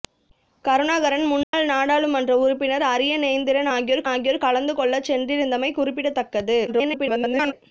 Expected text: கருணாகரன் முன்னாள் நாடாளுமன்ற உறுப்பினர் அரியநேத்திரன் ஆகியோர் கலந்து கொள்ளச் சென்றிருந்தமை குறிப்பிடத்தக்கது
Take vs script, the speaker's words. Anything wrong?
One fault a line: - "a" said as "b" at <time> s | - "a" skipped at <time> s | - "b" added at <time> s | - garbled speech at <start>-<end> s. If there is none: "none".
- "ஆகியோர்" added at 4.1 s
- garbled speech at 6.7-7.5 s